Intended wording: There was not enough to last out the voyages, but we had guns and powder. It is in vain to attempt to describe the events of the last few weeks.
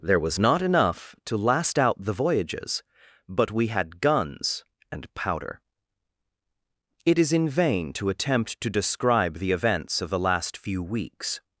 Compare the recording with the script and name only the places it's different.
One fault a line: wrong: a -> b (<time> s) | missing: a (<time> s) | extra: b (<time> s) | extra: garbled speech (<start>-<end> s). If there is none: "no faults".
no faults